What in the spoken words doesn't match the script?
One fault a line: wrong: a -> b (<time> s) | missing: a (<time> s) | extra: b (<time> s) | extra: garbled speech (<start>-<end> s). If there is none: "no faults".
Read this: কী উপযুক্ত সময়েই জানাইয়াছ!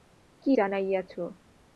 missing: উপযুক্ত সময়েই (0.5 s)